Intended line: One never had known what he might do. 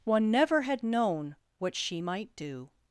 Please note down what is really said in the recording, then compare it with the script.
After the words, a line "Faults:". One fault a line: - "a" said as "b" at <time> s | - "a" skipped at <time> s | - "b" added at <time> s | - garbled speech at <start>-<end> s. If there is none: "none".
One never had known what she might do.
Faults:
- "he" said as "she" at 1.7 s